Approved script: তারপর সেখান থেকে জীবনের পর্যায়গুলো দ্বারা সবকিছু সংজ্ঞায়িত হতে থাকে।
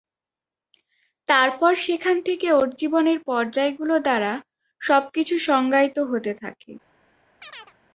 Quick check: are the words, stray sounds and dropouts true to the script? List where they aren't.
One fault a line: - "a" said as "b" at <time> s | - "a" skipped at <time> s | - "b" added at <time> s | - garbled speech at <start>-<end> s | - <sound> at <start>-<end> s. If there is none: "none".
- "ওর" added at 2.5 s
- chirp at 7.4-7.7 s